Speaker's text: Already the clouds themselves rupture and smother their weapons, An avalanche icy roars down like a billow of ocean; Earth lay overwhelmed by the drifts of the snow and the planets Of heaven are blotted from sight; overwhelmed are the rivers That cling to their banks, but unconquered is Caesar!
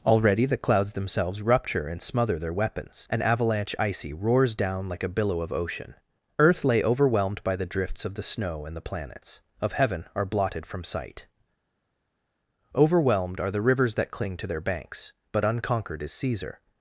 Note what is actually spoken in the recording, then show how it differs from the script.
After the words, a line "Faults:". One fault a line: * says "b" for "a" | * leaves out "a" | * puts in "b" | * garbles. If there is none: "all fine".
Already the clouds themselves rupture and smother their weapons, An avalanche icy roars down like a billow of ocean; Earth lay overwhelmed by the drifts of the snow and the planets Of heaven are blotted from sight; overwhelmed are the rivers That cling to their banks, but unconquered is Caesar!
Faults:
all fine